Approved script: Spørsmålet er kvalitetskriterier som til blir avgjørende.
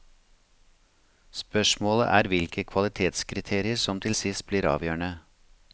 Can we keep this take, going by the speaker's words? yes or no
no